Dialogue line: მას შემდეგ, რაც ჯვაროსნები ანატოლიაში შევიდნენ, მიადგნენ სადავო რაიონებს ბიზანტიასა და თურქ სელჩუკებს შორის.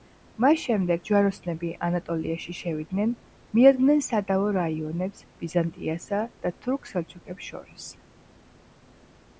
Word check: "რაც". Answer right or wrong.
wrong